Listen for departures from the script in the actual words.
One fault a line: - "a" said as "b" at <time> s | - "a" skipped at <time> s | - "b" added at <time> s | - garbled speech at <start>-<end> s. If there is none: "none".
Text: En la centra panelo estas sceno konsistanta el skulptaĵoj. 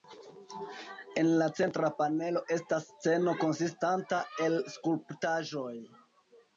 none